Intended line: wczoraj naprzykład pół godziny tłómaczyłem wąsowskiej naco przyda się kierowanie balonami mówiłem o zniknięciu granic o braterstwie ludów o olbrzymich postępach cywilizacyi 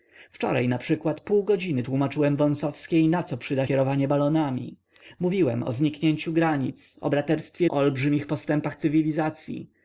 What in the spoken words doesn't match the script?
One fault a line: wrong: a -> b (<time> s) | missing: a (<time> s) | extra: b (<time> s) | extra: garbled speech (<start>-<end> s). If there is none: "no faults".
missing: się (3.7 s)
missing: ludów (7.7 s)